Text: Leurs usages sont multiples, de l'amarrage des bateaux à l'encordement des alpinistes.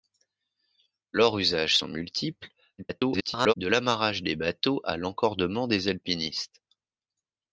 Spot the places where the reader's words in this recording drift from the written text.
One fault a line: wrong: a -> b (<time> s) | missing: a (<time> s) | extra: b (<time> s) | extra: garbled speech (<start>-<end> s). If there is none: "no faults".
extra: garbled speech (2.8-3.5 s)